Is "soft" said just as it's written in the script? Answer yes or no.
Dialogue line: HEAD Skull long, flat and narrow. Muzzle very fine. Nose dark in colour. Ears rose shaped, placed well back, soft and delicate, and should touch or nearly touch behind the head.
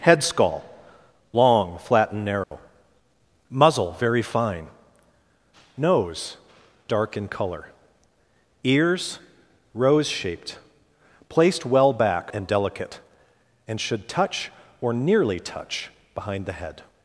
no